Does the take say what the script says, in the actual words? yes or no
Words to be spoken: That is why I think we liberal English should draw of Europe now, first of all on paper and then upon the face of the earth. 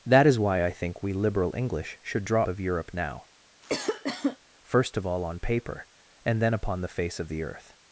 yes